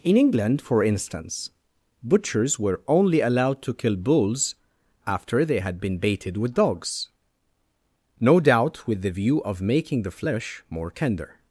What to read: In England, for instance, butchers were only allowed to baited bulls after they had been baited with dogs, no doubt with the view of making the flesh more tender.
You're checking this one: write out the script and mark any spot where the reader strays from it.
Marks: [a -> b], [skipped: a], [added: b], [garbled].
In England, for instance, butchers were only allowed to [baited -> kill] bulls after they had been baited with dogs, no doubt with the view of making the flesh more tender.